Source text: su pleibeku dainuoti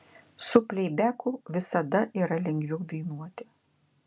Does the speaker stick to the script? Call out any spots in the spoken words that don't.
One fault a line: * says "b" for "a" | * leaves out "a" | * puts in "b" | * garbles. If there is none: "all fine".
* puts in "visada yra lengviau"